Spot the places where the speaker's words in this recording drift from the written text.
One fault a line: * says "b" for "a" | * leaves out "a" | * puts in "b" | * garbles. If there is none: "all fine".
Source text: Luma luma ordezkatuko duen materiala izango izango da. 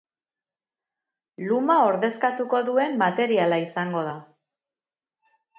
* leaves out "luma"
* leaves out "izango"